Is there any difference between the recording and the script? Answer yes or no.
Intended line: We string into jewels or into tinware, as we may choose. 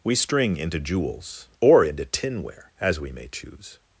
no